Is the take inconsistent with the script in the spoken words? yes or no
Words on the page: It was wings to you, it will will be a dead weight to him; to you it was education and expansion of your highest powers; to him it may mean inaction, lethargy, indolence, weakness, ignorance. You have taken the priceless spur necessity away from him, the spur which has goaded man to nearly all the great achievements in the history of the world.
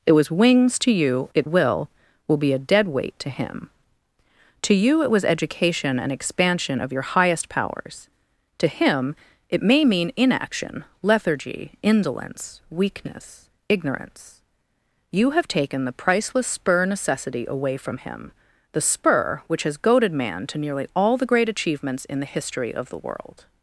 no